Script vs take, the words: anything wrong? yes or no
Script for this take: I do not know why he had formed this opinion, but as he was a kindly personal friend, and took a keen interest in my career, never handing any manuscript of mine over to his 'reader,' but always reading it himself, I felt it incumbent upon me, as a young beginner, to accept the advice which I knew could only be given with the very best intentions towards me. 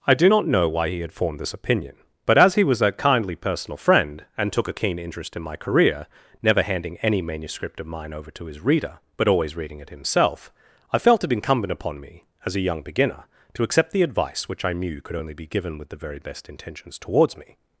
no